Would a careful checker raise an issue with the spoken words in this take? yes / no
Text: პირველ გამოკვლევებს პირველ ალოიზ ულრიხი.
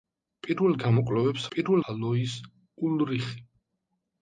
no